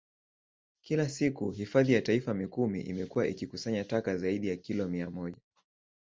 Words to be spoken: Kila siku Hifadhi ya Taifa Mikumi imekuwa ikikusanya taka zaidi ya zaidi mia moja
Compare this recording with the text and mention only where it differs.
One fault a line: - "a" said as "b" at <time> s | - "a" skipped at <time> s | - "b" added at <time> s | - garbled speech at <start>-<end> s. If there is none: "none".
- "zaidi" said as "kilo" at 4.6 s